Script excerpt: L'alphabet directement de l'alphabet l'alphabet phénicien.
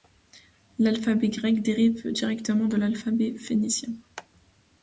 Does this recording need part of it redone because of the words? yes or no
yes